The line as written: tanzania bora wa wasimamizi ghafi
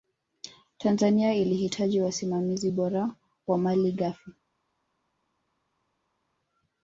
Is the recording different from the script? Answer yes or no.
yes